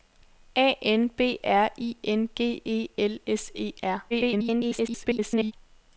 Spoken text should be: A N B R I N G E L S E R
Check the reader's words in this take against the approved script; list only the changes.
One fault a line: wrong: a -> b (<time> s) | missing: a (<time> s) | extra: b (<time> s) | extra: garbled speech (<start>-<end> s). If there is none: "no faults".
extra: garbled speech (4.1-5.5 s)